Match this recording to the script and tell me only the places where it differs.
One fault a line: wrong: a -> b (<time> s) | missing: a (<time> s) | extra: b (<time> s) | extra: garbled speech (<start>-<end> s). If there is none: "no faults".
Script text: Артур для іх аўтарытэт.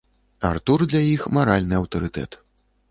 extra: маральны (1.4 s)